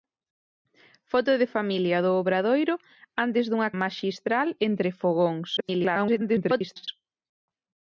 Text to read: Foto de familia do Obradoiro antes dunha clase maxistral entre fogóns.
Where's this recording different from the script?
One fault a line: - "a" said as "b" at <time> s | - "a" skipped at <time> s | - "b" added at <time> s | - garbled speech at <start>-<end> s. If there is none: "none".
- "clase" skipped at 3.7 s
- garbled speech at 5.6-6.9 s